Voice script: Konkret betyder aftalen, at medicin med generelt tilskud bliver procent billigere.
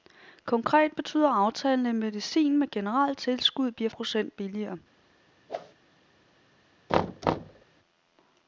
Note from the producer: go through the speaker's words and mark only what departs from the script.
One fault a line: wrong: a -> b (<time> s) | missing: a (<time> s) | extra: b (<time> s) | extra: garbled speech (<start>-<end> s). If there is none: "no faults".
no faults